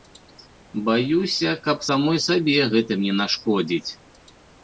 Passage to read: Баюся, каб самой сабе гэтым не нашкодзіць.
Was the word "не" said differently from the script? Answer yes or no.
no